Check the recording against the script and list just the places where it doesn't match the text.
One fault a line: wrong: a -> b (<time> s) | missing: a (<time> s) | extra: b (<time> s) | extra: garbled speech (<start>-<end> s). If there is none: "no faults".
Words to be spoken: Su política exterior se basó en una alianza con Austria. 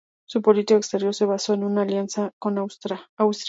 no faults